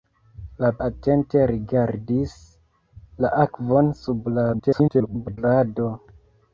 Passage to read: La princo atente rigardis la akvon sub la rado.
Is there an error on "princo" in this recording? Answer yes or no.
yes